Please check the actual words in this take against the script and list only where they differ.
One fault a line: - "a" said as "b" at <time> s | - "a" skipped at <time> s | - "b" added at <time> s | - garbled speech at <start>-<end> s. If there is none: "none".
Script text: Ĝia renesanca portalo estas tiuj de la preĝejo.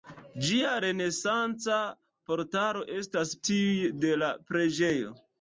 none